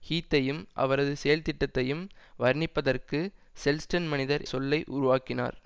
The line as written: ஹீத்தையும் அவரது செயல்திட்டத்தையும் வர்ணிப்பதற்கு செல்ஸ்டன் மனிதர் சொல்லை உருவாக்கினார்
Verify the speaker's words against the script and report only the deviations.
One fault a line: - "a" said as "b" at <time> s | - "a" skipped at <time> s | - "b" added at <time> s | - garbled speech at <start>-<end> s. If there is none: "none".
none